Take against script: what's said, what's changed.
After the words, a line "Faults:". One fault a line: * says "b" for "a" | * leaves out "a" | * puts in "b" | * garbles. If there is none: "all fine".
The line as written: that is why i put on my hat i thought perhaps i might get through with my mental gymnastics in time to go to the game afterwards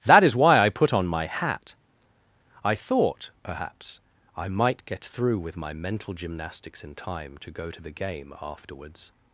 that is why i put on my hat i thought perhaps i might get through with my mental gymnastics in time to go to the game afterwards
Faults:
all fine